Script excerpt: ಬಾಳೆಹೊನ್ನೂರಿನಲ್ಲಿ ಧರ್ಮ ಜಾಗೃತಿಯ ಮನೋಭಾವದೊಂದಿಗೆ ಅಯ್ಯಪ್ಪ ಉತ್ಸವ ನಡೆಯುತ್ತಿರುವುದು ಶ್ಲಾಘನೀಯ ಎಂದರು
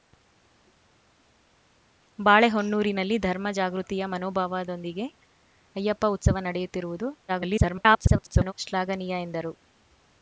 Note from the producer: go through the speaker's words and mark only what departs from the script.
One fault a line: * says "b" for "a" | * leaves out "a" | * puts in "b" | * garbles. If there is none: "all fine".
* garbles